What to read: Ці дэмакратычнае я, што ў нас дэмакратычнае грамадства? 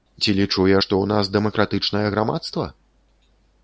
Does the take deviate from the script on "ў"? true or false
false